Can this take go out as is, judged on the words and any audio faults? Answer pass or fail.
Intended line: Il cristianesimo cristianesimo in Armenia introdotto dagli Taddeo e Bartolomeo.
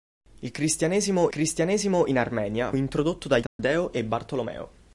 fail